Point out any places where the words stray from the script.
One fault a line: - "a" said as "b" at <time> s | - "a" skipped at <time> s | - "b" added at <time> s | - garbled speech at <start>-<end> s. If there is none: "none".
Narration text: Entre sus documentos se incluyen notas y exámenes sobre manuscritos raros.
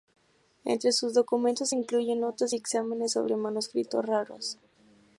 none